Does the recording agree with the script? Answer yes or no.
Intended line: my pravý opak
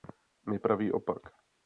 yes